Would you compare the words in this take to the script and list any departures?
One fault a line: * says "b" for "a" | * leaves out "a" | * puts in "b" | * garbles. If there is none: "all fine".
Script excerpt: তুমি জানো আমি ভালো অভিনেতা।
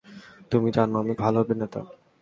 all fine